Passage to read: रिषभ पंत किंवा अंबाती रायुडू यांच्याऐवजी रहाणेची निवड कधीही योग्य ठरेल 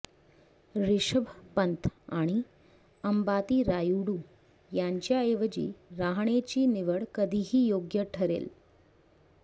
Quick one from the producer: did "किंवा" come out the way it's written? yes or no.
no